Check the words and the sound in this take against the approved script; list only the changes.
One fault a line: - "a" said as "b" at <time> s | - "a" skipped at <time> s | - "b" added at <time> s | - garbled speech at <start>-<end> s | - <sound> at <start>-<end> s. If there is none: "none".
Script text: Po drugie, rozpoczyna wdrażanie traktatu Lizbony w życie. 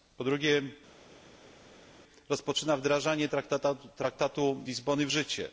none